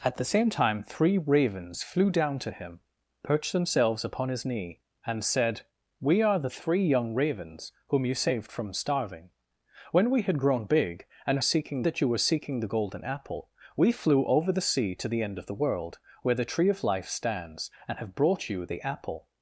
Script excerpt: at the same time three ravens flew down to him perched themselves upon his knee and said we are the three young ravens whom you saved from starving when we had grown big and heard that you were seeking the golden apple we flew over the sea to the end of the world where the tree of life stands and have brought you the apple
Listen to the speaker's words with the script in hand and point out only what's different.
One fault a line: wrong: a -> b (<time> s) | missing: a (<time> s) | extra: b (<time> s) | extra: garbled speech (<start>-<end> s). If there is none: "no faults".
wrong: heard -> seeking (11.4 s)